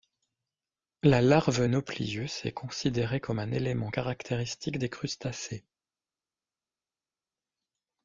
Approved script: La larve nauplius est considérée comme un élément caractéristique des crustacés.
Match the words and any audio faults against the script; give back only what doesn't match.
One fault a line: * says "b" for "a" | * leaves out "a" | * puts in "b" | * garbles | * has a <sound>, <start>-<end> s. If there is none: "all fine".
all fine